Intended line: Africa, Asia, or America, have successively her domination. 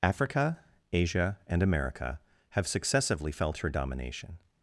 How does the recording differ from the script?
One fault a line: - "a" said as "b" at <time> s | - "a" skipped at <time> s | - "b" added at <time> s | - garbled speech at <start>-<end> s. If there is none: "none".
- "or" said as "and" at 1.4 s
- "felt" added at 3.3 s